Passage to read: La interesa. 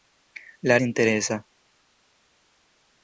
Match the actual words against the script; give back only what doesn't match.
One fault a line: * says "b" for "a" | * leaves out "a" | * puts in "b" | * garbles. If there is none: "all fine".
all fine